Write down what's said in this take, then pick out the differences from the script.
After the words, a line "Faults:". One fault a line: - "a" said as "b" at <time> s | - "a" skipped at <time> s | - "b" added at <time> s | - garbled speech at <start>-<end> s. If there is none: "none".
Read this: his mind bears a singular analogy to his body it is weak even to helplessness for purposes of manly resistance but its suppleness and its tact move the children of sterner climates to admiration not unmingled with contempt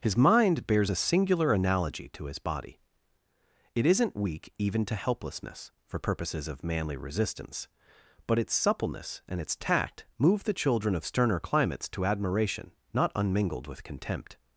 his mind bears a singular analogy to his body it isn't weak even to helplessness for purposes of manly resistance but its suppleness and its tact move the children of sterner climates to admiration not unmingled with contempt
Faults:
- "is" said as "isn't" at 3.8 s